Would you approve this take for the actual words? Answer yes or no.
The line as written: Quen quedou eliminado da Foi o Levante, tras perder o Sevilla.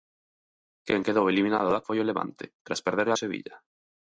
yes